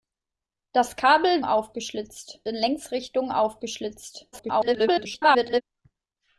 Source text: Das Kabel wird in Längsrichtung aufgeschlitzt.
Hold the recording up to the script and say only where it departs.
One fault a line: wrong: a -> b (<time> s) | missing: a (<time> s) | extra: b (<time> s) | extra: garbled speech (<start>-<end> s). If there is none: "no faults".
wrong: wird -> aufgeschlitzt (1.4 s)
extra: garbled speech (4.3-5.6 s)